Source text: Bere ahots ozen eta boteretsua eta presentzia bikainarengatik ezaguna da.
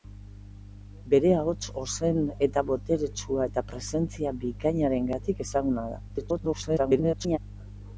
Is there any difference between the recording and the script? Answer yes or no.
yes